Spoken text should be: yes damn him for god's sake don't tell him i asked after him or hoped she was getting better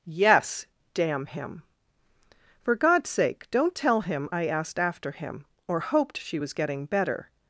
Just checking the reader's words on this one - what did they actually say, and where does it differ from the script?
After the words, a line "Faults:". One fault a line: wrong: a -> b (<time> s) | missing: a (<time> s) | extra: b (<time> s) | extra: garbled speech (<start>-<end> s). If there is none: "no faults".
yes damn him for god's sake don't tell him i asked after him or hoped she was getting better
Faults:
no faults